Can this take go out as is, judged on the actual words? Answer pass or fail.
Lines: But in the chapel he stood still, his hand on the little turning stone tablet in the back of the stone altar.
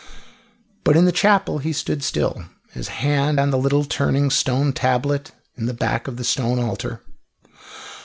pass